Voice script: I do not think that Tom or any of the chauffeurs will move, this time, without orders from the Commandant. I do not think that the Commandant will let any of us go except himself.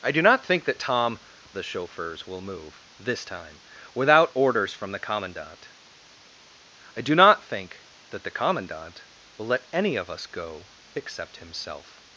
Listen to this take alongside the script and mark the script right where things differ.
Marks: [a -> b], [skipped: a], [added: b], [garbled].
I do not think that Tom [skipped: or any of] the chauffeurs will move, this time, without orders from the Commandant. I do not think that the Commandant will let any of us go except himself.